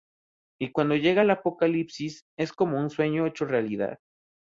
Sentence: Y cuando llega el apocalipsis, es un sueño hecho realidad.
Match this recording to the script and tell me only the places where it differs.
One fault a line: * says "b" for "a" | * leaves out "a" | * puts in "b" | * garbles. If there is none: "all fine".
* puts in "como"